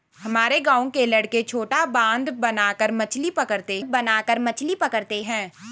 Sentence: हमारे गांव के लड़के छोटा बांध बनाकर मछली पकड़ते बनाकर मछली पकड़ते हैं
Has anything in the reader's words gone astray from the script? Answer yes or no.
no